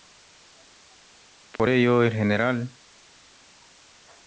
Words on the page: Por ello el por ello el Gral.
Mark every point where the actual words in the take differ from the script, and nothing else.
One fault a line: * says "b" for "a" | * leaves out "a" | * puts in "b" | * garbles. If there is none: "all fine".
* leaves out "por ello el"